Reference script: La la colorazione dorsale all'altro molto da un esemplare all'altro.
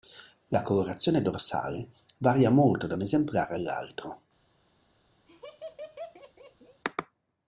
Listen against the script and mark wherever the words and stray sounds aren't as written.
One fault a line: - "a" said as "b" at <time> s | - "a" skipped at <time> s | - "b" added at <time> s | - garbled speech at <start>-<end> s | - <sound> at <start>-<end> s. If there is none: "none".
- "la" skipped at 0.6 s
- "all'altro" said as "varia" at 2.2 s
- laugh at 5.3-6.8 s